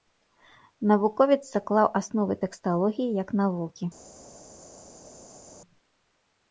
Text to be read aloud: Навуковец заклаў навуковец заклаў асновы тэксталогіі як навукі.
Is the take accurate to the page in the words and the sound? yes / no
no